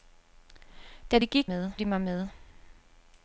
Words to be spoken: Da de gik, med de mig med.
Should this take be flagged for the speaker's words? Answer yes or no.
no